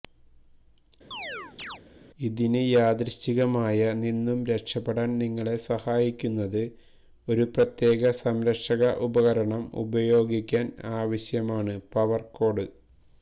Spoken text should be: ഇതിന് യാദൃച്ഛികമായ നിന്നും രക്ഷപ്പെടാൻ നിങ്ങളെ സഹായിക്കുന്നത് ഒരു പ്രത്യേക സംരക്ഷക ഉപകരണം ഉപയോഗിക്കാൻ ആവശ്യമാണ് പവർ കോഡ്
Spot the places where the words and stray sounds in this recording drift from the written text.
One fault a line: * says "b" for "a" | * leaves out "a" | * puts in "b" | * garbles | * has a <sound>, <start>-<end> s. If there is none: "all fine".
* has a chirp, 1.1-1.8 s